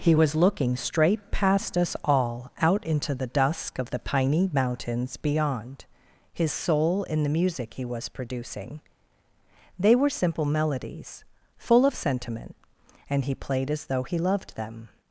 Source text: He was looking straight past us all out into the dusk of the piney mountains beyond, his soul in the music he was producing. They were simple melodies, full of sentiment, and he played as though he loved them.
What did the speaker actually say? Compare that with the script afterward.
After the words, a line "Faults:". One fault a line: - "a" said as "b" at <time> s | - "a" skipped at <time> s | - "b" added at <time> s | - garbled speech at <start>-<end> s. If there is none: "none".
He was looking straight past us all out into the dusk of the piney mountains beyond, his soul in the music he was producing. They were simple melodies, full of sentiment, and he played as though he loved them.
Faults:
none